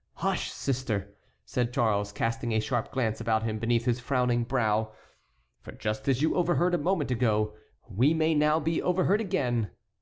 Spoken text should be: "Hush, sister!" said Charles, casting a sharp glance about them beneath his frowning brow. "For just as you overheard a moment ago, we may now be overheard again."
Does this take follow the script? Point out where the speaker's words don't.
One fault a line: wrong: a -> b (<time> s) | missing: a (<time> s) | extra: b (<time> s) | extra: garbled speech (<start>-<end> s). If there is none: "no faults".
wrong: them -> him (3.4 s)